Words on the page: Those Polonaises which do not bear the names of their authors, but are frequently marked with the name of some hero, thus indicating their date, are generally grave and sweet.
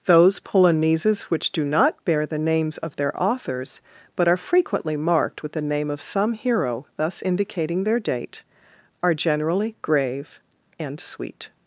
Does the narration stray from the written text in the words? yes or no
no